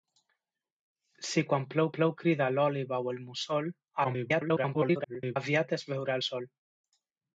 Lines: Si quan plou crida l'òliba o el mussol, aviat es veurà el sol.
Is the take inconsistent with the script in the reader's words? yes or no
yes